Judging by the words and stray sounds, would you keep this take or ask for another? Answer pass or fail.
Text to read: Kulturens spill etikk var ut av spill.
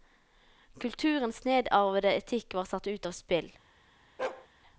fail